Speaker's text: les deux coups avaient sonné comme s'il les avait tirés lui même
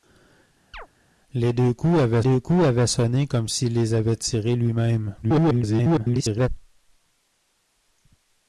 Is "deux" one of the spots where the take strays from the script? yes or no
no